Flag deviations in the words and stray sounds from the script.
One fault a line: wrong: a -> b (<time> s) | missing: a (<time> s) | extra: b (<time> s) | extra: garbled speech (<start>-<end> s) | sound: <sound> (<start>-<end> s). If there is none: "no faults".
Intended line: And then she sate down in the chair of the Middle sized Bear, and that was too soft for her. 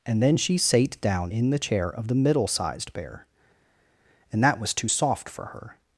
no faults